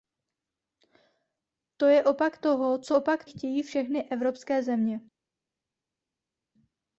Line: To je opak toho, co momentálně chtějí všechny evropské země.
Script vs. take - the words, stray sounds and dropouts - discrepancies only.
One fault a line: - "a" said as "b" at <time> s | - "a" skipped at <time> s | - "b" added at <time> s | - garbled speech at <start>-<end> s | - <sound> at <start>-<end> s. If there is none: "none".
- "momentálně" said as "opak" at 2.9 s